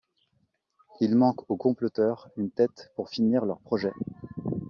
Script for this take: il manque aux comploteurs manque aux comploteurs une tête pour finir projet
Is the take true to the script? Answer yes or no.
no